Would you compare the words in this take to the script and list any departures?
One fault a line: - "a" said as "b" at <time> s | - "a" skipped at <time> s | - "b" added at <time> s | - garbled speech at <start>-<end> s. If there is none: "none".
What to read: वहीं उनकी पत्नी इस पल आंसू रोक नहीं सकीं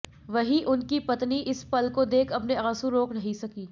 - "को देख अपने" added at 1.9 s